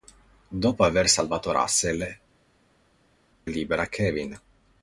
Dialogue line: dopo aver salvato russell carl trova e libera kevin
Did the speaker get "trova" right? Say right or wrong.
wrong